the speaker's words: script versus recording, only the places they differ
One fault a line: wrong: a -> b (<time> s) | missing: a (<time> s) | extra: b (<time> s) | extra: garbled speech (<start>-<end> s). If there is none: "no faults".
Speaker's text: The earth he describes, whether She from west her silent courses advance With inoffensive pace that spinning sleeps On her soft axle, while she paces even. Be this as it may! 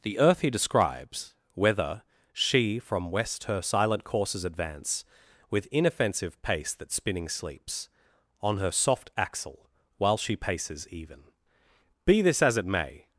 no faults